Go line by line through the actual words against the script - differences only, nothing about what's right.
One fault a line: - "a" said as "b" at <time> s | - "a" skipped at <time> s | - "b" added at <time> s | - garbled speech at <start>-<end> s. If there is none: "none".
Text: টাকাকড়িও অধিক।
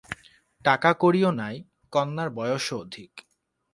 - "নাই কন্যার বয়সও" added at 1.3 s